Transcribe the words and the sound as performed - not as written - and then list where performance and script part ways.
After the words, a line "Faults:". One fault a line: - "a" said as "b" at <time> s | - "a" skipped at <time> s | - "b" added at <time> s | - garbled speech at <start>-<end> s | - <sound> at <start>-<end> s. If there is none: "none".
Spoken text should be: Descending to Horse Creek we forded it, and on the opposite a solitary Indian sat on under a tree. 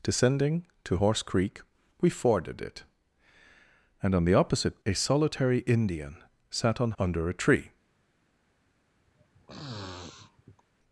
Descending to Horse Creek we forded it, and on the opposite a solitary Indian sat on under a tree.
Faults:
- sniff at 9.1-10.6 s